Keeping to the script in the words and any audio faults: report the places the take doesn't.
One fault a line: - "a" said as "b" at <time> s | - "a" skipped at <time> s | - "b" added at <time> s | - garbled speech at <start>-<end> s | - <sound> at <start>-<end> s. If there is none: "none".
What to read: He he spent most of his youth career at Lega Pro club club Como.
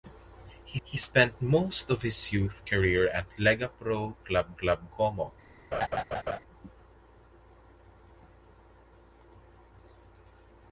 - laugh at 5.7-6.4 s